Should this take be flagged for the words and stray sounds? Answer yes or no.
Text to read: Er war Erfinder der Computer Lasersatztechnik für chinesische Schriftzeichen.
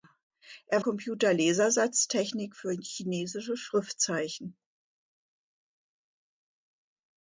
yes